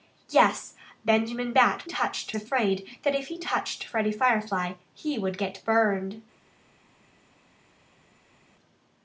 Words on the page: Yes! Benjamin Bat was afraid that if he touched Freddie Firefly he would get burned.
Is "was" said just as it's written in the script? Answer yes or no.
no